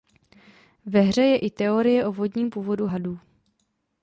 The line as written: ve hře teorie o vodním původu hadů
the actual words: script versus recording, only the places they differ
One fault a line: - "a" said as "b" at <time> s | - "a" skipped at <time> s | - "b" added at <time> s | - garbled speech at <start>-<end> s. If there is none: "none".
- "je i" added at 1.2 s